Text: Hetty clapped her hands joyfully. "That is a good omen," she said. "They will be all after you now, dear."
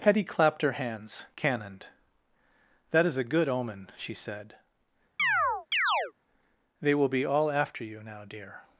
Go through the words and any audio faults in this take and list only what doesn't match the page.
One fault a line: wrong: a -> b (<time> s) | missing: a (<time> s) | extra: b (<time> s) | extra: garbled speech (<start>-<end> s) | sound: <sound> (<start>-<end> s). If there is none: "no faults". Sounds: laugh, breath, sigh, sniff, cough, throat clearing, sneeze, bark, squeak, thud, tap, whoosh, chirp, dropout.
wrong: joyfully -> cannoned (1.4 s)
sound: chirp (5.2-6.1 s)